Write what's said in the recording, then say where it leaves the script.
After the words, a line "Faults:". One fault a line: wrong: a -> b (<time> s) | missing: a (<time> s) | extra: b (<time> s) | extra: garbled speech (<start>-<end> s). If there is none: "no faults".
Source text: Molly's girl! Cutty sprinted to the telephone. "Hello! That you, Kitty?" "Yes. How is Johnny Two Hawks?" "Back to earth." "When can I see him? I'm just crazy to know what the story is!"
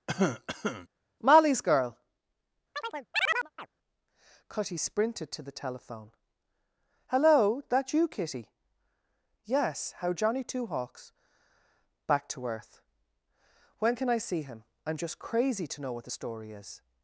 Molly's girl! Cutty sprinted to the telephone. "Hello! That you, Kitty?" "Yes. How Johnny Two Hawks?" "Back to earth." "When can I see him? I'm just crazy to know what the story is!"
Faults:
missing: is (10.1 s)